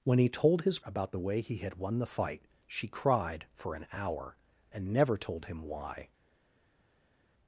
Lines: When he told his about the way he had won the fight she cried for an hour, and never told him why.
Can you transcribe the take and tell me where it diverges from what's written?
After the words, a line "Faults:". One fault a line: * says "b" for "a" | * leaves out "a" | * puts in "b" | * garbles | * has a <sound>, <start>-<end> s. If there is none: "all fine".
When he told his about the way he had won the fight she cried for an hour, and never told him why.
Faults:
all fine